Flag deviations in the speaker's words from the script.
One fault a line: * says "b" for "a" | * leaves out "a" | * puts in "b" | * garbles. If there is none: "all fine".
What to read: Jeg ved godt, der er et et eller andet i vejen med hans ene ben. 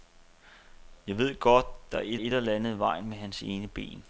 all fine